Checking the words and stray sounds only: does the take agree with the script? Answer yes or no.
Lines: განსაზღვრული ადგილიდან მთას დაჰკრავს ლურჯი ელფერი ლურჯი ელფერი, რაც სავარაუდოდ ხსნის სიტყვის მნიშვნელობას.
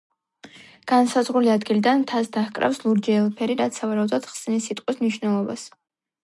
no